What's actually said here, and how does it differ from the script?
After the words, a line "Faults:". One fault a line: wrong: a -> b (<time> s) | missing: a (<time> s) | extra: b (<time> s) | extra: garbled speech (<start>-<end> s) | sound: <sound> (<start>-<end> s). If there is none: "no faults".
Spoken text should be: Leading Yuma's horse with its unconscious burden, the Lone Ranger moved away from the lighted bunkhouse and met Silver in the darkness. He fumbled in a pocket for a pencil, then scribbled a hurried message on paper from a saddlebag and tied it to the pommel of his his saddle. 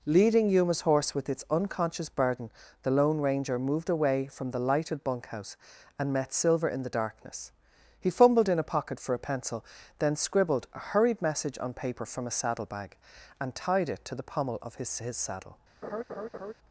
Leading Yuma's horse with its unconscious burden, the Lone Ranger moved away from the lighted bunkhouse and met Silver in the darkness. He fumbled in a pocket for a pencil, then scribbled a hurried message on paper from a saddlebag and tied it to the pommel of his his saddle.
Faults:
sound: laugh (15.8-16.5 s)